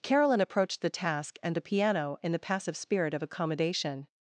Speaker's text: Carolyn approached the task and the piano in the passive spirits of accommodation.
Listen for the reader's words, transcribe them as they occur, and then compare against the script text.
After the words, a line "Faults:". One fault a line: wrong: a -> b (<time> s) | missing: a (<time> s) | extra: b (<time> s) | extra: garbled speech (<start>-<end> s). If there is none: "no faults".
Carolyn approached the task and the piano in the passive spirit of accommodation.
Faults:
wrong: spirits -> spirit (2.8 s)